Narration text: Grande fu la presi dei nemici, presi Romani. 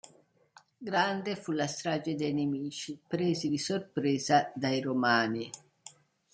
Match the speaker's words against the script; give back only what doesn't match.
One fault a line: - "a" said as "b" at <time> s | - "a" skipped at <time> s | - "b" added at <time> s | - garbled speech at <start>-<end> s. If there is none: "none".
- "presi" said as "strage" at 1.7 s
- "di sorpresa dai" added at 3.5 s